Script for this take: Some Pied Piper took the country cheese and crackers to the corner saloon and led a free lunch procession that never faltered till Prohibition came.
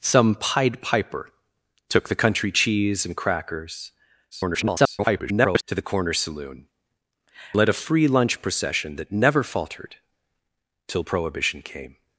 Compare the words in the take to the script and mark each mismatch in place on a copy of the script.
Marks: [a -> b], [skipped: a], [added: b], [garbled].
Some Pied Piper took the country cheese and crackers [garbled] to the corner saloon [skipped: and] led a free lunch procession that never faltered till Prohibition came.